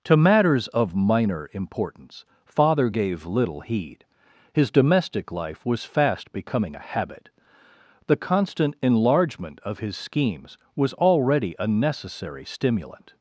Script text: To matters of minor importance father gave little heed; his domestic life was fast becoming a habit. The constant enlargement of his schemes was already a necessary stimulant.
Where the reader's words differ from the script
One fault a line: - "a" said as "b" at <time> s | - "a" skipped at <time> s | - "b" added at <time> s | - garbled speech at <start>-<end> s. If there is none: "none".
none